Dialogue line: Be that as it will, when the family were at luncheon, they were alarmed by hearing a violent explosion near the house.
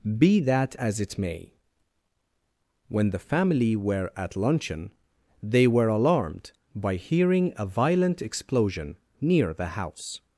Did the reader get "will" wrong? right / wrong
wrong